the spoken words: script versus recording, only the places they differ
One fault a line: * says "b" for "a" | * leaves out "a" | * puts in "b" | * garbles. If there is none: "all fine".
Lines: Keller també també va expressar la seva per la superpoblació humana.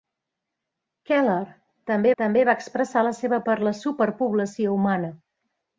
all fine